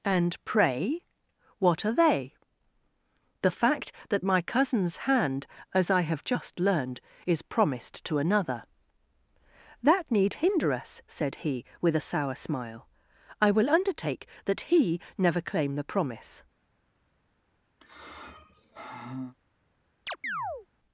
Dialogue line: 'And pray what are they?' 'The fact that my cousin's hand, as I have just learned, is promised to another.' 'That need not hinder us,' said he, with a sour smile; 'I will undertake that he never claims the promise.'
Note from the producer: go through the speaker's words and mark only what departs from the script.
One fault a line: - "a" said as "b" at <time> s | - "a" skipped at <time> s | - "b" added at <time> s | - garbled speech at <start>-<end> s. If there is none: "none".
- "not" skipped at 10.3 s
- "claims" said as "claim" at 15.4 s